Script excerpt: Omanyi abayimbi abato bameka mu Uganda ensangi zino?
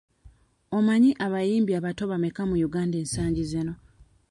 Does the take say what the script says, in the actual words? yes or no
yes